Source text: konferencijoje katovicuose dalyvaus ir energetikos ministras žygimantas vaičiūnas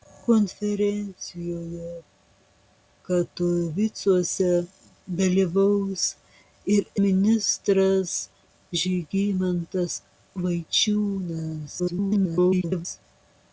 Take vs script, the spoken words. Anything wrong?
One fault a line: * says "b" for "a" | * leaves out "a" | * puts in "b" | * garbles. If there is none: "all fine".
* leaves out "energetikos"
* garbles